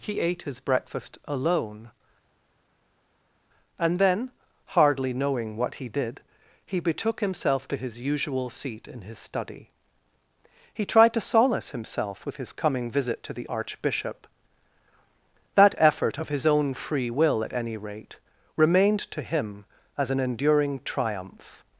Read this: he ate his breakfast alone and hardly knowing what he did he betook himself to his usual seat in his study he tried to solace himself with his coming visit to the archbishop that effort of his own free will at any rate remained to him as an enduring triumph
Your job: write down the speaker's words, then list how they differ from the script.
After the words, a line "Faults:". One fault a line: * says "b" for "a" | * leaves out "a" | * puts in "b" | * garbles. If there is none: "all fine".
he ate his breakfast alone and then hardly knowing what he did he betook himself to his usual seat in his study he tried to solace himself with his coming visit to the archbishop that effort of his own free will at any rate remained to him as an enduring triumph
Faults:
* puts in "then"